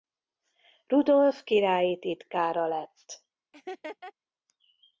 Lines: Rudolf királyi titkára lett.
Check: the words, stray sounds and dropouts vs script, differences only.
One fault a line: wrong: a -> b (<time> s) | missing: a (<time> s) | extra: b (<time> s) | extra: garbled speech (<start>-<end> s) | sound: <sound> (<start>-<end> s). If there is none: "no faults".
sound: laugh (3.5-4.1 s)